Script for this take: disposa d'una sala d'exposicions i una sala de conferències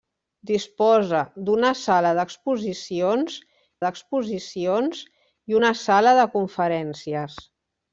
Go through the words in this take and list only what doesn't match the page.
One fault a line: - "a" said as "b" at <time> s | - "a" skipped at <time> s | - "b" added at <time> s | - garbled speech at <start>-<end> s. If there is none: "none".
- "d'exposicions" added at 3.9 s